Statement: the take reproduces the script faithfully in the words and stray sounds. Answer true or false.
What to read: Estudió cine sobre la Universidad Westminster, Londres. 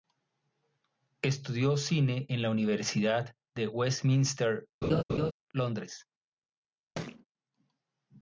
false